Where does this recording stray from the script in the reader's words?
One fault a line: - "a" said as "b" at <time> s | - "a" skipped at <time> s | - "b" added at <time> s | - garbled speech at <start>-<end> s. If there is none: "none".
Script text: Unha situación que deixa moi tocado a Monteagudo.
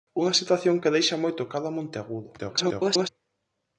- garbled speech at 2.4-3.1 s